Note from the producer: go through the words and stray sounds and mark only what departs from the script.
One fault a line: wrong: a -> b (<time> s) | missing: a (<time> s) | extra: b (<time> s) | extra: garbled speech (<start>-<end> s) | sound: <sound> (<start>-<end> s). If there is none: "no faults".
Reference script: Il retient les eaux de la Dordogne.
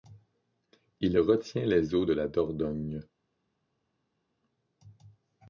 no faults